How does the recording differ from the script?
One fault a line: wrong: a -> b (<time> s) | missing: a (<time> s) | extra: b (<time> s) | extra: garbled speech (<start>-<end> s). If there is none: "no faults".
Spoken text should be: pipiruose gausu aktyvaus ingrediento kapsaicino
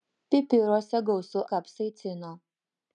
missing: aktyvaus ingrediento (1.4 s)